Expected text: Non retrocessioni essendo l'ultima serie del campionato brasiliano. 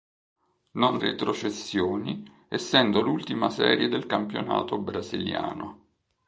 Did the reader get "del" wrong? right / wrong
right